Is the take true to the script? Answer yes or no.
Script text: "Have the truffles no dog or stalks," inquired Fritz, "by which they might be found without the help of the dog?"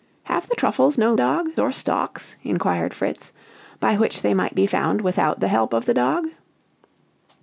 yes